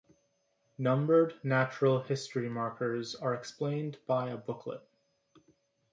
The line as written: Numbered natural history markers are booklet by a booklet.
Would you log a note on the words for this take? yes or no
yes